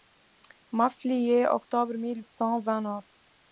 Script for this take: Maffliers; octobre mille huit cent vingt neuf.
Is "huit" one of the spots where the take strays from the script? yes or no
yes